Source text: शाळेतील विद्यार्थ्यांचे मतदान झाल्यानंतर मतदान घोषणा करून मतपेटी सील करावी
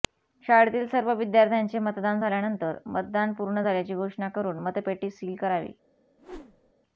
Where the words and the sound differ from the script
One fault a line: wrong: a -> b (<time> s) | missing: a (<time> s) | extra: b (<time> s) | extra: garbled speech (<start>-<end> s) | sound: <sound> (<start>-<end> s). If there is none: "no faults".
extra: सर्व (0.9 s)
extra: पूर्ण झाल्याची (3.3 s)
sound: whoosh (6.2-6.7 s)